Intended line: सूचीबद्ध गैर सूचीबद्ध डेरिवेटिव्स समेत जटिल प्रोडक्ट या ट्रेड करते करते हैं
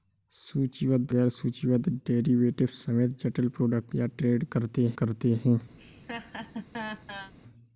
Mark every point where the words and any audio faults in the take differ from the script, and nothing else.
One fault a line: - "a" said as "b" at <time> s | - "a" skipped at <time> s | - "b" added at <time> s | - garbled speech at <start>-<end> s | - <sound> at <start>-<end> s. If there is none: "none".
- laugh at 5.8-7.3 s